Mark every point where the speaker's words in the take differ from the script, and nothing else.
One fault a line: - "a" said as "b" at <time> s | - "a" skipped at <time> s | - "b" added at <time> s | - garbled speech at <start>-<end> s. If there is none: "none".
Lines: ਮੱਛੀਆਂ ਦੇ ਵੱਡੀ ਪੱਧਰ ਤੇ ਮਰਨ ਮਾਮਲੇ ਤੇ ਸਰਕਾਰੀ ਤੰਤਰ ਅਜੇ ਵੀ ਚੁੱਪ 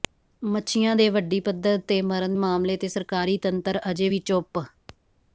none